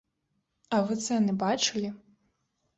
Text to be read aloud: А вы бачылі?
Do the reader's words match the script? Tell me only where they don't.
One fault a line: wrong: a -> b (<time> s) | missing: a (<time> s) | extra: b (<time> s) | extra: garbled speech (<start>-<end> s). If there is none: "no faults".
extra: цэны (1.0 s)